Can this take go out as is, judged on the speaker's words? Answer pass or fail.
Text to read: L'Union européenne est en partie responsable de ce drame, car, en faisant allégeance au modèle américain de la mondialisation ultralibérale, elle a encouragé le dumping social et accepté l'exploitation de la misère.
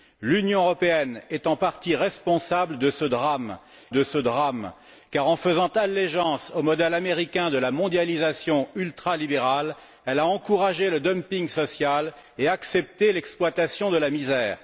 fail